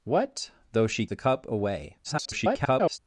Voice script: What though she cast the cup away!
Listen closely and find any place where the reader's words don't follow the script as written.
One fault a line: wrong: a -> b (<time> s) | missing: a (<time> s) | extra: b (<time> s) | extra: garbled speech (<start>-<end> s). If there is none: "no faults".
missing: cast (1.1 s)
extra: garbled speech (2.0-3.0 s)